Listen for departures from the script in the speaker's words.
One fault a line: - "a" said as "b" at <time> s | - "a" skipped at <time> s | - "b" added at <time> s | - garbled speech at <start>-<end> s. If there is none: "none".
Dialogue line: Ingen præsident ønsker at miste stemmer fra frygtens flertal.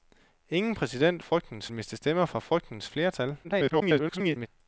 - "ønsker" said as "frygtens" at 1.2 s
- garbled speech at 3.4-4.5 s